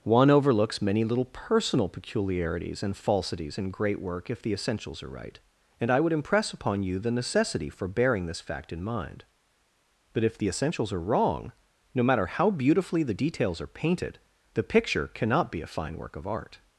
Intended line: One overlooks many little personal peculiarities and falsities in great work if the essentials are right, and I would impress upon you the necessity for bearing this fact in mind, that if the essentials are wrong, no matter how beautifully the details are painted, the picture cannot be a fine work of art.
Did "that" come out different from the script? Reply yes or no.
yes